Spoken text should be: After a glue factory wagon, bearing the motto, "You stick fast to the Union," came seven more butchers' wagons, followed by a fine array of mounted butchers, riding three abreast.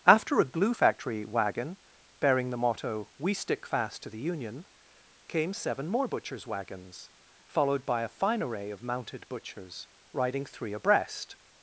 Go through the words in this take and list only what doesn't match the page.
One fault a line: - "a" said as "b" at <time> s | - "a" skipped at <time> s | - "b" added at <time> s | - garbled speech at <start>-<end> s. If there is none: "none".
- "You" said as "We" at 3.2 s